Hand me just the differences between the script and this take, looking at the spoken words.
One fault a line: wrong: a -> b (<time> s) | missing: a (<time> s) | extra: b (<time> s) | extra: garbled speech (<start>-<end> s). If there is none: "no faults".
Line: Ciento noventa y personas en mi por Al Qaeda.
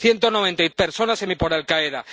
no faults